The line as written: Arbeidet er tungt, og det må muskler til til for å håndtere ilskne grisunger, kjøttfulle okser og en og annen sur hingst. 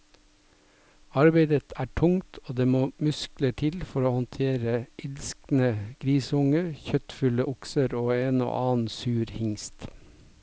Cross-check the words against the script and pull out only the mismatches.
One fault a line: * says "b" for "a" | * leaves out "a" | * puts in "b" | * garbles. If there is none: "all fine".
* leaves out "til"